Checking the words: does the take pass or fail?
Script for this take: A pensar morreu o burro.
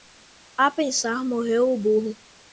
pass